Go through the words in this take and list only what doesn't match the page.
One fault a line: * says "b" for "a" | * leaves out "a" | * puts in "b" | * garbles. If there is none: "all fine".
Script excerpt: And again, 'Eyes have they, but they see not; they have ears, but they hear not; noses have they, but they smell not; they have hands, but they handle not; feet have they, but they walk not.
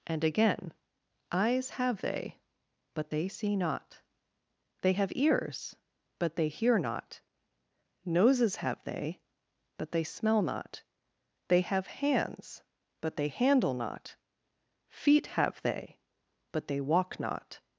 all fine